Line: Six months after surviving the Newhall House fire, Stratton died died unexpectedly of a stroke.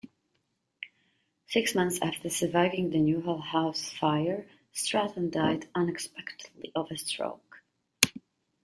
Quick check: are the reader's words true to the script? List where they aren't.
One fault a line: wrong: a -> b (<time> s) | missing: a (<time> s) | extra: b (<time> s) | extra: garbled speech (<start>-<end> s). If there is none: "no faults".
missing: died (5.7 s)